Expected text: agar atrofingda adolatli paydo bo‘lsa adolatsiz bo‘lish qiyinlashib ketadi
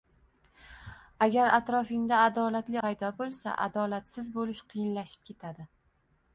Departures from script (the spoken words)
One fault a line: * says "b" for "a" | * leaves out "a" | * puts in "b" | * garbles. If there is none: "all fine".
all fine